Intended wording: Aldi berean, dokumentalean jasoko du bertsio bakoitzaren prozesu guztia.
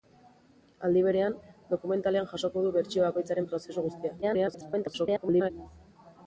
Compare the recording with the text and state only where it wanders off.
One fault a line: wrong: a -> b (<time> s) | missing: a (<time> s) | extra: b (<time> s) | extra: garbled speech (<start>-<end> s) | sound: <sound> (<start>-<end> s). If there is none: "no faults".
extra: garbled speech (4.2-5.5 s)